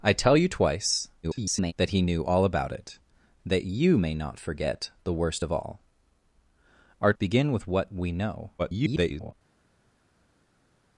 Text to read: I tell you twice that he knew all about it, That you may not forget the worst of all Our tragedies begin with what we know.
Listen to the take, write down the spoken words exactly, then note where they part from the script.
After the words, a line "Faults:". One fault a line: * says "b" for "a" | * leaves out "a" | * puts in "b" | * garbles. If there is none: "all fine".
I tell you twice [garbled] that he knew all about it, That you may not forget the worst of all Our begin with what we know. [garbled]
Faults:
* garbles
* leaves out "tragedies"
* garbles